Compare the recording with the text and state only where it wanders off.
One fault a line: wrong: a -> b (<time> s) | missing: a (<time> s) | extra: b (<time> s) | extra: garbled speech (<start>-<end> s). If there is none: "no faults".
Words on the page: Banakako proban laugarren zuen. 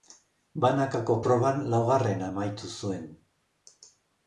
extra: amaitu (2.3 s)